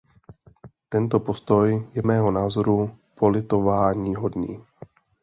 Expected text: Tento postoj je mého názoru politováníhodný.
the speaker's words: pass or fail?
pass